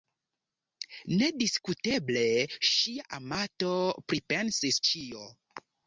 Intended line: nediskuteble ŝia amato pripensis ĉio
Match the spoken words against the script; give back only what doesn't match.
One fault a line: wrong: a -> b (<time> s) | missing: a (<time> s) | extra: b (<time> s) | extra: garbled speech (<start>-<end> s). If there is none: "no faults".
no faults